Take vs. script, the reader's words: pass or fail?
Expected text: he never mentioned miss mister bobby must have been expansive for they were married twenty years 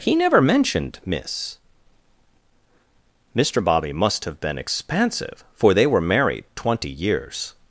pass